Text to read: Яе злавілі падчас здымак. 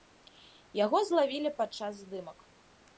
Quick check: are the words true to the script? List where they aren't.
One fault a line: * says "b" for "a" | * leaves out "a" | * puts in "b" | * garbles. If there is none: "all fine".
* says "Яго" for "Яе"